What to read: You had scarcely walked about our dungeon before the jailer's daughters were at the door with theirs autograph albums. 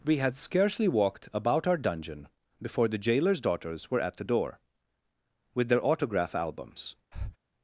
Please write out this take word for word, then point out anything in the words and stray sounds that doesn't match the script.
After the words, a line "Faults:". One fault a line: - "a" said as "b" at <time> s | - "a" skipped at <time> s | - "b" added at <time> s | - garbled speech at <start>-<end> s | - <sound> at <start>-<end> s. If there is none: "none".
We had scarcely walked about our dungeon before the jailer's daughters were at the door with their autograph albums.
Faults:
- "You" said as "We" at 0.0 s
- "theirs" said as "their" at 5.7 s
- breath at 7.1-7.4 s